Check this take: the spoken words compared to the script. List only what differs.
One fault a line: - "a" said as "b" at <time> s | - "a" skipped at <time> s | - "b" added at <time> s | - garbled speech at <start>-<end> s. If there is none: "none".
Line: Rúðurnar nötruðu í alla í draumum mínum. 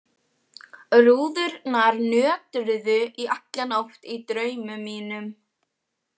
- "nótt" added at 3.7 s